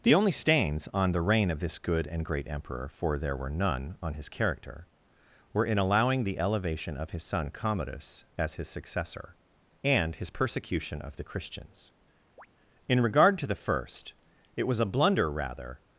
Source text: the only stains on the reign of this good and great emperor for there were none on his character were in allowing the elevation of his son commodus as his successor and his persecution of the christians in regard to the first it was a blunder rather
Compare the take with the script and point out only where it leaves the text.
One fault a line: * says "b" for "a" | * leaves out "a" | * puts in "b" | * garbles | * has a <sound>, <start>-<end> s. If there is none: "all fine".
* has a chirp, 12.4-12.5 s